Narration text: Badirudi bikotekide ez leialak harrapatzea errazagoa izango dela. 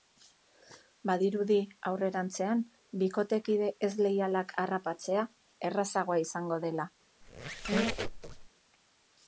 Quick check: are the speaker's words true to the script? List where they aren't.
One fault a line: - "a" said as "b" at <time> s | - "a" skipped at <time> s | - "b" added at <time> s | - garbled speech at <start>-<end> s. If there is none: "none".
- "aurrerantzean" added at 1.9 s